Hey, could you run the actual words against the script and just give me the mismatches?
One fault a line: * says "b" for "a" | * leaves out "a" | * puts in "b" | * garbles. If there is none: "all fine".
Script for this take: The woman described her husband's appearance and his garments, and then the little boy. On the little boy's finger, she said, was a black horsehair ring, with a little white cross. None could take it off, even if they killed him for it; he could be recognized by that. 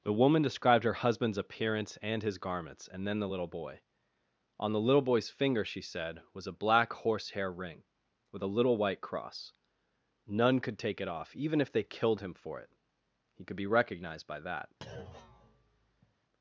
all fine